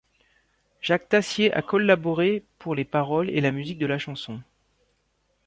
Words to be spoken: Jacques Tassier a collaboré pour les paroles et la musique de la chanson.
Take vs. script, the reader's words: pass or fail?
pass